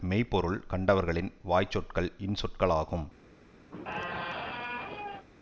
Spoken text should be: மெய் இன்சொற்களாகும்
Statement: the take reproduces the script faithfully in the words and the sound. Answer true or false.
false